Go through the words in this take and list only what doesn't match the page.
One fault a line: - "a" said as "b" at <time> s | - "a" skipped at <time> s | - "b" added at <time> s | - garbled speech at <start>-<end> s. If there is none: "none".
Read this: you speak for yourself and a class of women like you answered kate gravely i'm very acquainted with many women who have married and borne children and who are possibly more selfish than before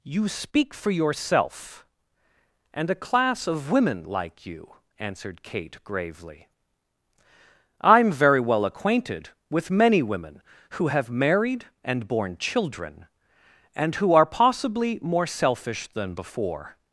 - "well" added at 8.4 s